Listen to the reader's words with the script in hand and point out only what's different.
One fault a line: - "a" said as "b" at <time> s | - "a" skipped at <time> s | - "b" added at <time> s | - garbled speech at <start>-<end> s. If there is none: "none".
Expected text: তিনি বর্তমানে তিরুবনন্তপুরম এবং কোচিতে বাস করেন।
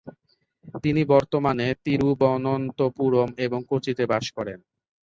none